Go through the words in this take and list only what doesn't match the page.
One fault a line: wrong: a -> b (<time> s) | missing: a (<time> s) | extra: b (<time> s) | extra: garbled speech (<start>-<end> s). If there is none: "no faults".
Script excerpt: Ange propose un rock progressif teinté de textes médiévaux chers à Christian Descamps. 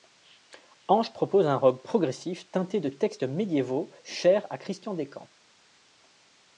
no faults